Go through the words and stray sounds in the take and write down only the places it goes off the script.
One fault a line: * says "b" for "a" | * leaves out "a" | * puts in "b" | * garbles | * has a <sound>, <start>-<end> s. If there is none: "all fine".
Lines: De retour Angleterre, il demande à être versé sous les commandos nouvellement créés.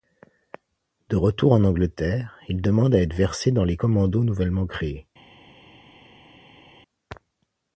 * puts in "en"
* says "dans" for "sous"